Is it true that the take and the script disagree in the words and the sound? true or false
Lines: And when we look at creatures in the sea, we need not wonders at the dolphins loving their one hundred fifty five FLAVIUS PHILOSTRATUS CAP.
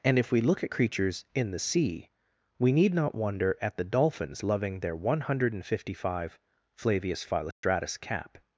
true